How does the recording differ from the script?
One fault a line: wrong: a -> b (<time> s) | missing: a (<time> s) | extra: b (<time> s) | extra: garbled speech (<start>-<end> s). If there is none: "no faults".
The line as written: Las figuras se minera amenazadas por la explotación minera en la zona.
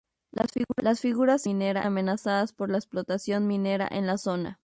no faults